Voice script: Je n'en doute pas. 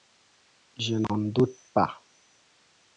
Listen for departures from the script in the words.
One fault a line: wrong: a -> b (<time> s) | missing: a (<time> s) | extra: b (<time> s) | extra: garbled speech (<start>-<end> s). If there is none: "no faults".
no faults